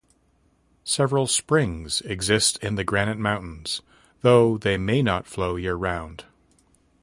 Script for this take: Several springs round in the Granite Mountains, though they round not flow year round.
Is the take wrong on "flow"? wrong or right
right